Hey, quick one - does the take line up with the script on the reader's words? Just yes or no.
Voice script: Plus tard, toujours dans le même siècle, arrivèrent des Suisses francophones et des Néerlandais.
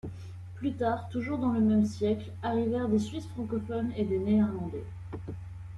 yes